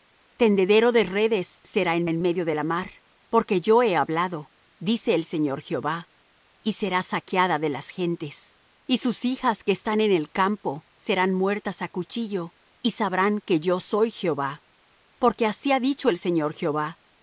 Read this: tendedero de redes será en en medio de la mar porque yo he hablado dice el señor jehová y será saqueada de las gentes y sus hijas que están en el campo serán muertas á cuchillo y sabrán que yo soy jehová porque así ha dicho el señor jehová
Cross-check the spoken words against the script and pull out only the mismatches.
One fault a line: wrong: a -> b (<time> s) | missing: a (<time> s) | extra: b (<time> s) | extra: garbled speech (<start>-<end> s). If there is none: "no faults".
no faults